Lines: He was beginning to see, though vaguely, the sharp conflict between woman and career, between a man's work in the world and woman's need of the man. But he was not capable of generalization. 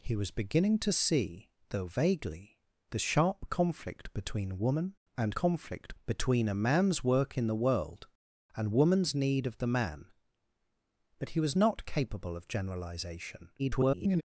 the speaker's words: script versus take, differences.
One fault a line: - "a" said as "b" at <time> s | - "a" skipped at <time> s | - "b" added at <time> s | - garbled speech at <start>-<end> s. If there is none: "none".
- "career" said as "conflict" at 5.3 s
- garbled speech at 13.6-14.2 s